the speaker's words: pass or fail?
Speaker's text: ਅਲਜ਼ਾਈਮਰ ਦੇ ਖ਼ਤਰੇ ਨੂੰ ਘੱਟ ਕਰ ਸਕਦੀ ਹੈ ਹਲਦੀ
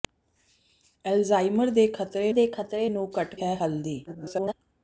fail